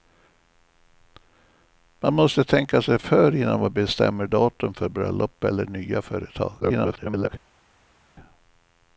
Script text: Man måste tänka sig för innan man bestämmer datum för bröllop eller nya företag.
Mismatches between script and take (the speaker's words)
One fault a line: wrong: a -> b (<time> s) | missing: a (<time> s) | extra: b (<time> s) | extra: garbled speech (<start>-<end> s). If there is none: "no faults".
extra: garbled speech (6.6-7.3 s)